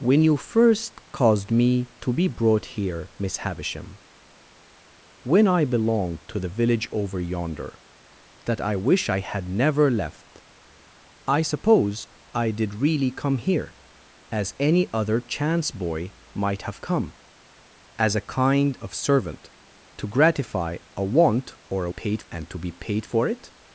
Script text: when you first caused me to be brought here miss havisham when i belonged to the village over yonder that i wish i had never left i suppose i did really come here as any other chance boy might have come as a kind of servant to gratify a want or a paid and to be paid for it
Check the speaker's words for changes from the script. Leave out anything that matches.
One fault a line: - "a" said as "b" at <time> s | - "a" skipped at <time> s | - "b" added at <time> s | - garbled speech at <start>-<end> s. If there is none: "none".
none